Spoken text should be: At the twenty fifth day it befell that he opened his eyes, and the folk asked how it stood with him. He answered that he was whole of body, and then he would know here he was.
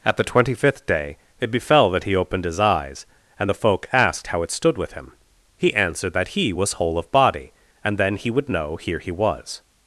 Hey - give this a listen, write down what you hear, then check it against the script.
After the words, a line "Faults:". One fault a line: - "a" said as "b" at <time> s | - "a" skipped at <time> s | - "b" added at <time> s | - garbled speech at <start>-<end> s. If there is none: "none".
At the twenty fifth day it befell that he opened his eyes, and the folk asked how it stood with him. He answered that he was whole of body, and then he would know here he was.
Faults:
none